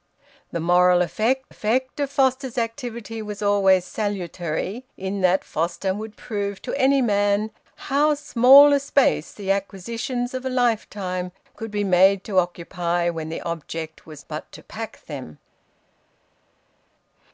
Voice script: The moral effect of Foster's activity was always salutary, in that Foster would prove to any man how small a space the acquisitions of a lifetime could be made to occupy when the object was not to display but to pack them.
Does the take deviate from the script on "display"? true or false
true